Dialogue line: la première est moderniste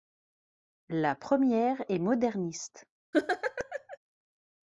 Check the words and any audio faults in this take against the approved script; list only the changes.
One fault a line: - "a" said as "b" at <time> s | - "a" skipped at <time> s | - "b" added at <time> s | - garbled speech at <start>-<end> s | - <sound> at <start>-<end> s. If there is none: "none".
- laugh at 3.1-4.0 s